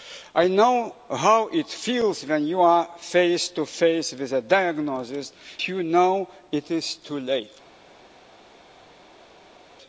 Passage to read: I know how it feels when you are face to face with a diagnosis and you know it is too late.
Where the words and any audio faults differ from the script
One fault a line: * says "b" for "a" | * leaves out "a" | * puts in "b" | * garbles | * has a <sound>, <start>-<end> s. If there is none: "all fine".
* leaves out "and"